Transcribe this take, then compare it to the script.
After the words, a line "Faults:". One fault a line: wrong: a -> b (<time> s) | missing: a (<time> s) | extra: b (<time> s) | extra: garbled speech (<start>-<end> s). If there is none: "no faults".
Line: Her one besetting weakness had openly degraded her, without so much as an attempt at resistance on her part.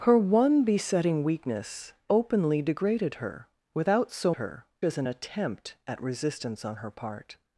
Her one besetting weakness openly degraded her, without so her as an attempt at resistance on her part.
Faults:
missing: had (1.9 s)
wrong: much -> her (4.3 s)